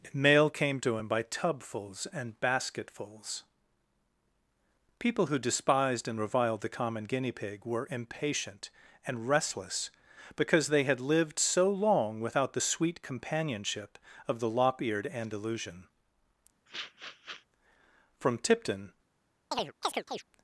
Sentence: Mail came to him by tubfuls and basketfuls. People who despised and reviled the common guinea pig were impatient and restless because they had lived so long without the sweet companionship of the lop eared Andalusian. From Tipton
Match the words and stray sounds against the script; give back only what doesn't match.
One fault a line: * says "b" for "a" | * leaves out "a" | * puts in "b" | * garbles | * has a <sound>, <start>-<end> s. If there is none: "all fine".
* has a sniff, 16.7-17.5 s
* has a chirp, 19.5-20.2 s